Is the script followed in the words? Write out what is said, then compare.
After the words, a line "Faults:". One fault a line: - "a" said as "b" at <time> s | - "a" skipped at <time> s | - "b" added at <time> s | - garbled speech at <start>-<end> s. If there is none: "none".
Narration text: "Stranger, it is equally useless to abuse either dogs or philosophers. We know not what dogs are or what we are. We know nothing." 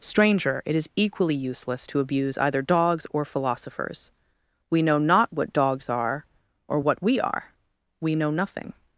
"Stranger, it is equally useless to abuse either dogs or philosophers. We know not what dogs are or what we are. We know nothing."
Faults:
none